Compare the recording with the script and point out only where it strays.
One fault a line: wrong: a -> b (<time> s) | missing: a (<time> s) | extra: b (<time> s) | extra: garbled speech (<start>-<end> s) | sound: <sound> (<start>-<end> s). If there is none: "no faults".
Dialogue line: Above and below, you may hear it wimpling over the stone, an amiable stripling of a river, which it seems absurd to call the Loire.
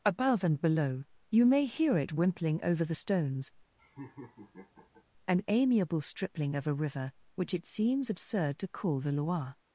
wrong: stone -> stones (3.0 s)
sound: laugh (3.8-5.0 s)